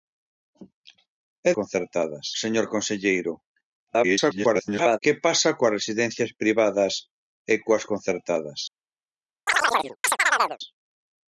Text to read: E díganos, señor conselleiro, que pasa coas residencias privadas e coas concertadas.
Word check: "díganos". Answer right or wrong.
wrong